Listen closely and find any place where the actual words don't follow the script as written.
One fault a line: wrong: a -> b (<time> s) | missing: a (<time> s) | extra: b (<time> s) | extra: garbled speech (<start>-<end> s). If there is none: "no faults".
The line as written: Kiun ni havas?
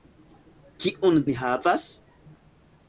no faults